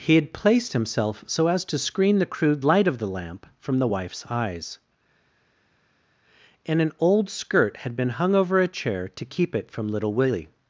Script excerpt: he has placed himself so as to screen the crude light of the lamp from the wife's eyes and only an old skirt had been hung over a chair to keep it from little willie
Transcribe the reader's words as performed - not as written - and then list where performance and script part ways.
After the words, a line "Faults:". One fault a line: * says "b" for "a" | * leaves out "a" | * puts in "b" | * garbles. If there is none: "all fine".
he had placed himself so as to screen the crude light of the lamp from the wife's eyes and an old skirt had been hung over a chair to keep it from little willie
Faults:
* says "had" for "has"
* leaves out "only"